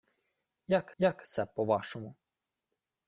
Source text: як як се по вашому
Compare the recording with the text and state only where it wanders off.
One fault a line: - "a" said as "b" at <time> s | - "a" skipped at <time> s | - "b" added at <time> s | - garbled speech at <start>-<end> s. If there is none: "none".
none